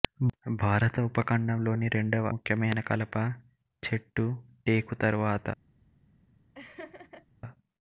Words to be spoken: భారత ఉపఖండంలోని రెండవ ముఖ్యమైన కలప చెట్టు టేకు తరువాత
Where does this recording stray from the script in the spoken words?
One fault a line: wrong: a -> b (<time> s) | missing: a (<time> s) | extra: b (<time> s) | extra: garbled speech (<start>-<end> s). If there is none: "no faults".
no faults